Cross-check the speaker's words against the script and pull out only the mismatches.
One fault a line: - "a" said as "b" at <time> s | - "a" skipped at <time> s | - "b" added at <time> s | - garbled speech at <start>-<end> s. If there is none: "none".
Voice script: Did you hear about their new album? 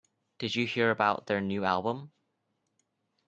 none